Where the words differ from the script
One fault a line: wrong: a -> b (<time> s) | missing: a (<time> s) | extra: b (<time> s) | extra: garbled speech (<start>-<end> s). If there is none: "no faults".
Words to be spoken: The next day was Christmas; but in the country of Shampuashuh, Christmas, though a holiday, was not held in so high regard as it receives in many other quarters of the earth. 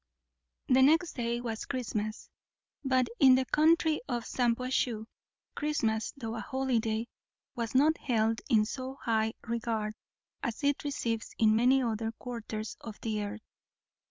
no faults